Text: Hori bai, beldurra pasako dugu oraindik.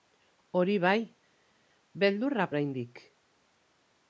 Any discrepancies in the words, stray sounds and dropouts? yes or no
yes